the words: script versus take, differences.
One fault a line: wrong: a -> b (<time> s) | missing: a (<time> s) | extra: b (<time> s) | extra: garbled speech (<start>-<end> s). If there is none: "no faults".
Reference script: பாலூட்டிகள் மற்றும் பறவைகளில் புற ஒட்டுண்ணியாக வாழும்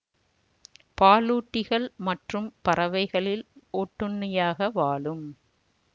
missing: புற (3.5 s)